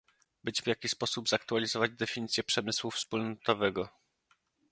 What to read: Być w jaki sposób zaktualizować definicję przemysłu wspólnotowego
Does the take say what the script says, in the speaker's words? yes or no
yes